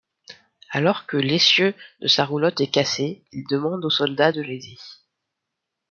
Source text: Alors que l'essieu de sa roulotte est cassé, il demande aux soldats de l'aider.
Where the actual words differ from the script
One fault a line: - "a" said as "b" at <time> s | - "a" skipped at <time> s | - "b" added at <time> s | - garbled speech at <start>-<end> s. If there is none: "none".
none